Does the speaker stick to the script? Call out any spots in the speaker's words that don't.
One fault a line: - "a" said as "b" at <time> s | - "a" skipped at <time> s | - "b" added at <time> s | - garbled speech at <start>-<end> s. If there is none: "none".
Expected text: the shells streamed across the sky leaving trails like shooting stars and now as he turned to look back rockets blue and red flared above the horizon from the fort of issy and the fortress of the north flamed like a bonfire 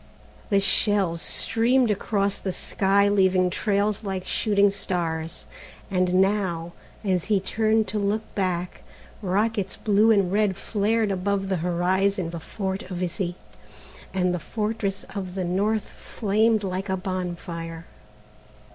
- "from" skipped at 12.3 s